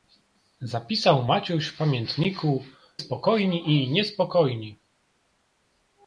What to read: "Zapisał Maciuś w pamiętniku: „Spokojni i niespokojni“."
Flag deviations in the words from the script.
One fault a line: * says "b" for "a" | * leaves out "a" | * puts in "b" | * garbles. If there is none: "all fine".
all fine